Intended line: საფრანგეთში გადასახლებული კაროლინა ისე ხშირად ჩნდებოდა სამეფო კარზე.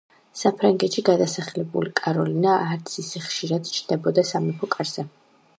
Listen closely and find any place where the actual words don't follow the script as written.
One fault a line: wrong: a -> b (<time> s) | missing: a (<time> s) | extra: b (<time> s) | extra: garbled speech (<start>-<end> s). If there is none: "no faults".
extra: არც (2.7 s)